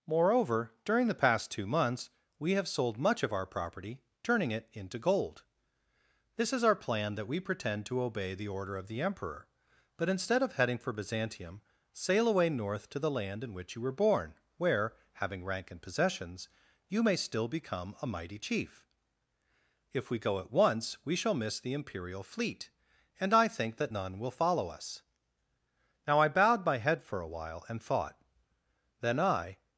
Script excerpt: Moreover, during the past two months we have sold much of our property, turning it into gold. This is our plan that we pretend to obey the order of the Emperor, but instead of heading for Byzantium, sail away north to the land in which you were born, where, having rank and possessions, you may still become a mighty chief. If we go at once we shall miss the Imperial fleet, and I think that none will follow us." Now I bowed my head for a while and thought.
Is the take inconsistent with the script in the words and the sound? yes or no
yes